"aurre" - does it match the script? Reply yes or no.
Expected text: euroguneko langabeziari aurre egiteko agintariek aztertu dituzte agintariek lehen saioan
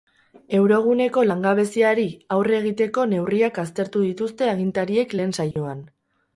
yes